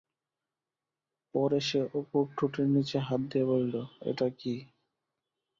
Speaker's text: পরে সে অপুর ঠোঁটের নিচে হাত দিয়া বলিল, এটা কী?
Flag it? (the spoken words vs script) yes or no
no